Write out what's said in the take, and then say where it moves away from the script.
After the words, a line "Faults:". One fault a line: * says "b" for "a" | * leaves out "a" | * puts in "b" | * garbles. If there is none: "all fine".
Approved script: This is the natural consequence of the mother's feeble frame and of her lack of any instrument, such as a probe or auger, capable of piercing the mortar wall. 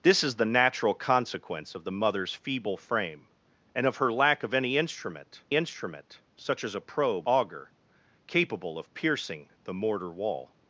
This is the natural consequence of the mother's feeble frame and of her lack of any instrument instrument, such as a probe auger, capable of piercing the mortar wall.
Faults:
* puts in "instrument"
* leaves out "or"